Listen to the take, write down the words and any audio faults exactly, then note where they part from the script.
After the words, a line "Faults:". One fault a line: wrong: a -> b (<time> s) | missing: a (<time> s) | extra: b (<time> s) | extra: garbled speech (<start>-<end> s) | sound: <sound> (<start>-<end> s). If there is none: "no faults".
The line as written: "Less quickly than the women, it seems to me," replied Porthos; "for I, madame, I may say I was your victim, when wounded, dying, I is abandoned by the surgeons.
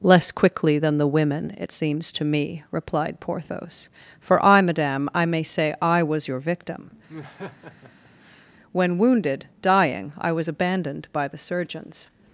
"Less quickly than the women, it seems to me," replied Porthos; "for I, madame, I may say I was your victim, when wounded, dying, I was abandoned by the surgeons.
Faults:
sound: laugh (7.1-8.5 s)
wrong: is -> was (10.3 s)